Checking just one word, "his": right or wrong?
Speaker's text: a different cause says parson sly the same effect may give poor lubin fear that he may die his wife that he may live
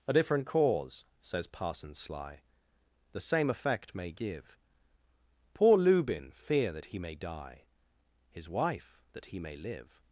right